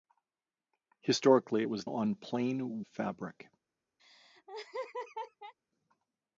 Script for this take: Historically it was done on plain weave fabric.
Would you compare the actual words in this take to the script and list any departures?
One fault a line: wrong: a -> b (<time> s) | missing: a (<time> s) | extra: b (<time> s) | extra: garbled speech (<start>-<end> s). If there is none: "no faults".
missing: done (1.8 s)
missing: weave (2.8 s)